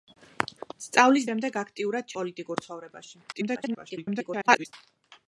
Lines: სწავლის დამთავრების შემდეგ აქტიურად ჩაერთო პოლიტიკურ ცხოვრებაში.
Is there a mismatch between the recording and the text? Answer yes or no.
yes